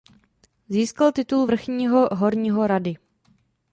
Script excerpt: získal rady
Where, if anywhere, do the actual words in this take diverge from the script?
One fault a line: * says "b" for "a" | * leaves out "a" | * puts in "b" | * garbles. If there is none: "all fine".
* puts in "titul vrchního horního"